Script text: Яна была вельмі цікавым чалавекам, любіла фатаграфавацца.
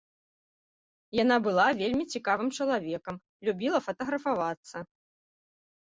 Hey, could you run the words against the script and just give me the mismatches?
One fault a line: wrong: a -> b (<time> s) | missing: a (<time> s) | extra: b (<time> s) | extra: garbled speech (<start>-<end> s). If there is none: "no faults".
no faults